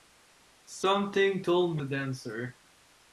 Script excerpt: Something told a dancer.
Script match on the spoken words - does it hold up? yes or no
yes